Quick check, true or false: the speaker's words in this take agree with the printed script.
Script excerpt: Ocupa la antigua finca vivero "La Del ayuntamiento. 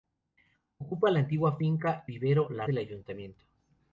true